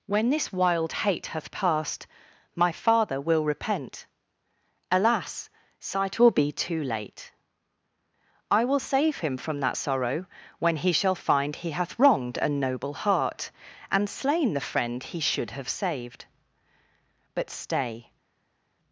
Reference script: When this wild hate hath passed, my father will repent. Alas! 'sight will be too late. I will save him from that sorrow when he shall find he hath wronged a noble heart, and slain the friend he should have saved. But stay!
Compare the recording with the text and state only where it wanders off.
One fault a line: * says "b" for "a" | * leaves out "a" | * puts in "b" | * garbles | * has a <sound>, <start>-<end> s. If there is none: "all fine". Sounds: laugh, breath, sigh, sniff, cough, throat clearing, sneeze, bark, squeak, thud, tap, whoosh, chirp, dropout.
all fine